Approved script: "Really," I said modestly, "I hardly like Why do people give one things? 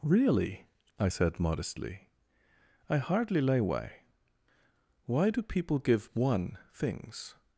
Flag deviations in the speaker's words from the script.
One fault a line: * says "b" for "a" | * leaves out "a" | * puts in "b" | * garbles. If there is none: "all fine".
* says "lay way" for "like"